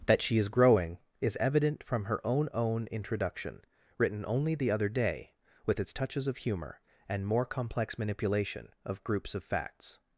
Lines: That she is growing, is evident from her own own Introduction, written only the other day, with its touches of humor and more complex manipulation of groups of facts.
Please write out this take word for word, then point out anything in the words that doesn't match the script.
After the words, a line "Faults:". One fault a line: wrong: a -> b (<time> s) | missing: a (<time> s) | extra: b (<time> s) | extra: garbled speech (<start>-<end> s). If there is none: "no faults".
That she is growing, is evident from her own own Introduction, written only the other day, with its touches of humor and more complex manipulation of groups of facts.
Faults:
no faults